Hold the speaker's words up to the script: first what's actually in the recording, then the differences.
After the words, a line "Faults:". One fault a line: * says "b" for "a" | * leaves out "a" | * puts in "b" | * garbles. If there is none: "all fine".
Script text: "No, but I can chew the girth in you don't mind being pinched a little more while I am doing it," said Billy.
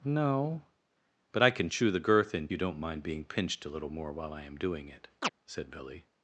"No, but I can chew the girth in you don't mind being pinched a little more while I am doing it," said Billy.
Faults:
all fine